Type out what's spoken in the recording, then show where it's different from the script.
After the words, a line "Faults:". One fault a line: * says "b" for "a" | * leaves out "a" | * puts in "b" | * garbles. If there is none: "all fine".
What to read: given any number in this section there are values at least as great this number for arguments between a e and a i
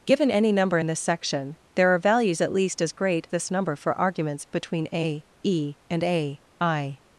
given any number in this section there are values at least as great this number for arguments between a e and a i
Faults:
all fine